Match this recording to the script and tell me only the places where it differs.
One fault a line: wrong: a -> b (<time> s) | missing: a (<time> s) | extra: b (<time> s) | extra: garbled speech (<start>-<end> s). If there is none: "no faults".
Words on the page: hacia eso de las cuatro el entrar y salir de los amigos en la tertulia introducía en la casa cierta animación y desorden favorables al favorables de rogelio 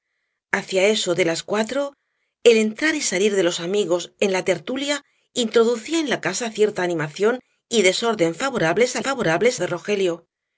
no faults